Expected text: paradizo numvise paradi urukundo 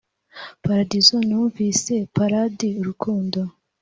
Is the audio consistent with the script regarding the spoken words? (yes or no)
yes